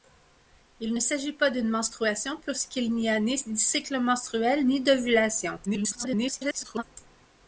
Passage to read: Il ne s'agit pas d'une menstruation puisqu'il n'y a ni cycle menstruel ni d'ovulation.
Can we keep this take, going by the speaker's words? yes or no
no